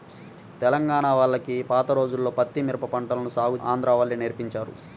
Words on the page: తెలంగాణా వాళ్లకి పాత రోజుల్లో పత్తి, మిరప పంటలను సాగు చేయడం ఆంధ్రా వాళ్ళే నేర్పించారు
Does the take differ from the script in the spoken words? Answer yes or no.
yes